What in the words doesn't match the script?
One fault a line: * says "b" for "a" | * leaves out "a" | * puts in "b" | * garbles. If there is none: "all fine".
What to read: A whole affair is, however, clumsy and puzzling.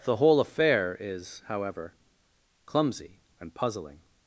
* says "The" for "A"